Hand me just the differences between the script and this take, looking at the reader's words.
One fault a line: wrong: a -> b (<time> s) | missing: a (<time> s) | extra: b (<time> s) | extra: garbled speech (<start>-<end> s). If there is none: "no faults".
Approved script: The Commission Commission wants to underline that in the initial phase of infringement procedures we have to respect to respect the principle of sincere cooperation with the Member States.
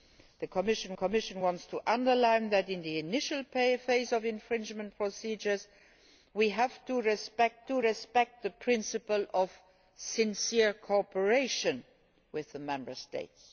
no faults